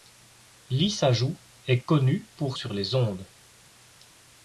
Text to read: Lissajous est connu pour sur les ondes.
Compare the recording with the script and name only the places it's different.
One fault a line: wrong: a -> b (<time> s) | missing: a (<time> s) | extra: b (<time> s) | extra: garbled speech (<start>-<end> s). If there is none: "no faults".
no faults